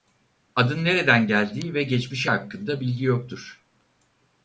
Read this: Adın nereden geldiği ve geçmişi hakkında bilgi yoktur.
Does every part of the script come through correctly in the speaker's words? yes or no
yes